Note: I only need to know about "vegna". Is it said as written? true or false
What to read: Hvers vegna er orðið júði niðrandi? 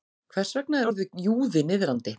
true